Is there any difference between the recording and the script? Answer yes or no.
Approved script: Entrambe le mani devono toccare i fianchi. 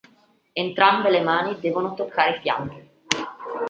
no